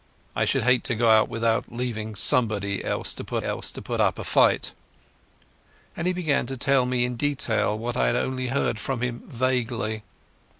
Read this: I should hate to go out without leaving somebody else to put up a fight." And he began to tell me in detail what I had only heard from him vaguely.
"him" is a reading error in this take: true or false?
false